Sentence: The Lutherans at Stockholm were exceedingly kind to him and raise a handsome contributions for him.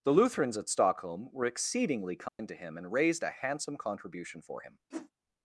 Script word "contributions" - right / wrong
wrong